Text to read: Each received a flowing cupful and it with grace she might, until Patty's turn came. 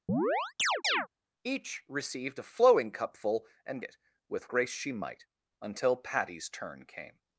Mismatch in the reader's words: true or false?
false